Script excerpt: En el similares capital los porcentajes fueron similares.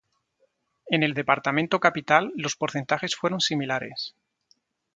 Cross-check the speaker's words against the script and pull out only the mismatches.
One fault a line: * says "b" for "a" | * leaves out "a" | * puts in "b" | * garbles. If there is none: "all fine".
* says "departamento" for "similares"